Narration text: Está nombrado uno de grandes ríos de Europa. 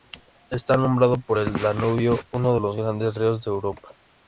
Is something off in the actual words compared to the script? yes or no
yes